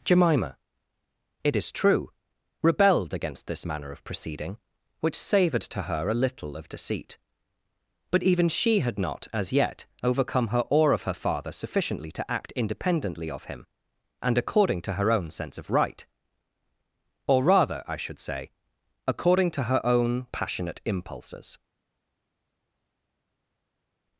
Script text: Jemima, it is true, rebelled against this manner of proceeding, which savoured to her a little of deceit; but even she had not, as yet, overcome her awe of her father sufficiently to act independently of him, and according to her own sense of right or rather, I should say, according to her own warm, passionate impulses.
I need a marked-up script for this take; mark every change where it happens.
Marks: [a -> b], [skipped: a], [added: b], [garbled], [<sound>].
Jemima, it is true, rebelled against this manner of proceeding, which savoured to her a little of deceit; but even she had not, as yet, overcome her awe of her father sufficiently to act independently of him, and according to her own sense of right or rather, I should say, according to her own [skipped: warm,] passionate impulses.